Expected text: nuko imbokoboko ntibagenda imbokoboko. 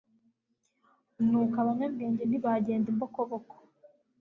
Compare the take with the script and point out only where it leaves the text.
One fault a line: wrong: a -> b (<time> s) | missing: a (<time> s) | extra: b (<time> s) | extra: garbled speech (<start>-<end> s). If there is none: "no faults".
wrong: imbokoboko -> abanyabwenge (1.6 s)